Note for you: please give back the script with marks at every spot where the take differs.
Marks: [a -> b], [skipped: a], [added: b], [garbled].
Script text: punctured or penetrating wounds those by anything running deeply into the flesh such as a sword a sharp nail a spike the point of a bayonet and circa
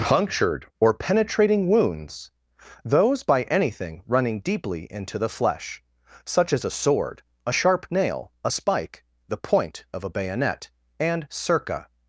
punctured or penetrating wounds those by anything running deeply into the flesh such as a sword a sharp nail a spike the point of a bayonet and circa